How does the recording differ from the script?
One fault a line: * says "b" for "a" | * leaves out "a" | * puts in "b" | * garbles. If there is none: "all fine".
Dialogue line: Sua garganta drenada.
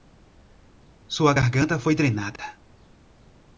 * puts in "foi"